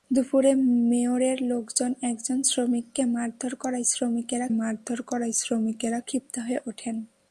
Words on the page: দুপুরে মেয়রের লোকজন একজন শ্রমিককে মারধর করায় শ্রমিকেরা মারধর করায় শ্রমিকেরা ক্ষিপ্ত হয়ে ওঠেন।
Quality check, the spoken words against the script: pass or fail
pass